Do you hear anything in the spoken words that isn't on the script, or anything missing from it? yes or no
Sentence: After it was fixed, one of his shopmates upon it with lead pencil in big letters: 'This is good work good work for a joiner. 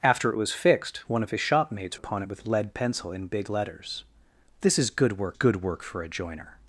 no